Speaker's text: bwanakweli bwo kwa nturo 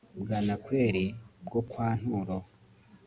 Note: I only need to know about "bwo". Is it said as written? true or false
true